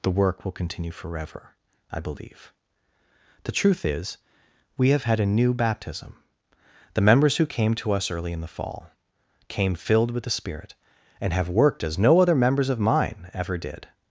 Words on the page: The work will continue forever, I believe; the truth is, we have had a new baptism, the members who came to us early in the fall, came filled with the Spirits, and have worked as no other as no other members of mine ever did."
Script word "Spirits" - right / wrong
wrong